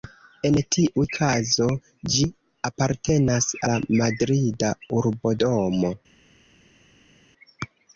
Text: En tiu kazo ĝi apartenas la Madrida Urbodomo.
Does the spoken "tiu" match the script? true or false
true